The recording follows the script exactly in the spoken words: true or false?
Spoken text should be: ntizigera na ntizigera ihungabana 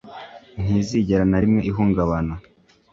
false